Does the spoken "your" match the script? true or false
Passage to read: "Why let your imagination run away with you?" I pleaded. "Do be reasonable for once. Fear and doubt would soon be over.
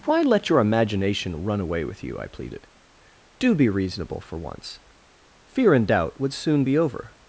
true